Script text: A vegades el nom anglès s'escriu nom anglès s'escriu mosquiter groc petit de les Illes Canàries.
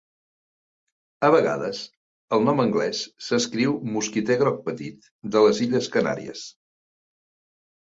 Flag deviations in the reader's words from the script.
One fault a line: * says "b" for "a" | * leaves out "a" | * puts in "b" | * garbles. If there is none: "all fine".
* leaves out "nom anglès s'escriu"